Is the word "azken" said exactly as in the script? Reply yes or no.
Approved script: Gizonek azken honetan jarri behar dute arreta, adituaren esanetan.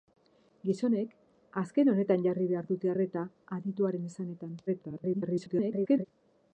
yes